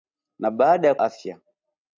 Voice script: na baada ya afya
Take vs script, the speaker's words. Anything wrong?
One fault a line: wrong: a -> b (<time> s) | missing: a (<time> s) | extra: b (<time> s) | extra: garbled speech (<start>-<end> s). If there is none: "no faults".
no faults